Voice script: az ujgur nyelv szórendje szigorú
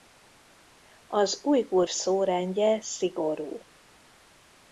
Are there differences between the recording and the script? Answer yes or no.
yes